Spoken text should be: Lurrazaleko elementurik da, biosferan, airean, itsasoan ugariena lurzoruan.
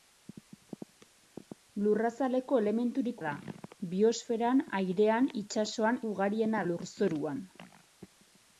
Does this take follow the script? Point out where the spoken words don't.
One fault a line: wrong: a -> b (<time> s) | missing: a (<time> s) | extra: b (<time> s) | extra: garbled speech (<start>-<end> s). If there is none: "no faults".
no faults